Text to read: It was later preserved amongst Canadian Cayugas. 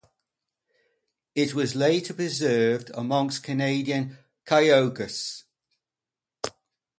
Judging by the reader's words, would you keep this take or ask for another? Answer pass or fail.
pass